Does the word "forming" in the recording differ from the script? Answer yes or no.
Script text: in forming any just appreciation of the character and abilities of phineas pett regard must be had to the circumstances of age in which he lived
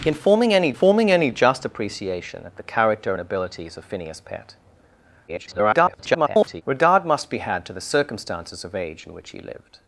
no